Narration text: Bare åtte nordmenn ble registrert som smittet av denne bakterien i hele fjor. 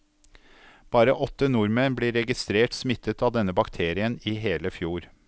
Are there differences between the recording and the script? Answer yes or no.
yes